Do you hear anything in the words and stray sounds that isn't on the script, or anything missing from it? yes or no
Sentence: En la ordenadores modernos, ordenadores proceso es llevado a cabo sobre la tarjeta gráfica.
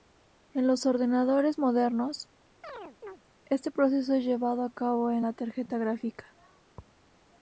yes